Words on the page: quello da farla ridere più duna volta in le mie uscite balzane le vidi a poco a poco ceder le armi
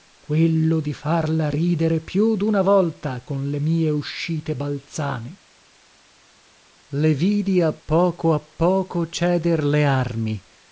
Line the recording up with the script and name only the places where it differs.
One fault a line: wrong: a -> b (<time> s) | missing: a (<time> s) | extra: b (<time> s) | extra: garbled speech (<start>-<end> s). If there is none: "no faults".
wrong: da -> di (0.8 s)
wrong: in -> con (3.2 s)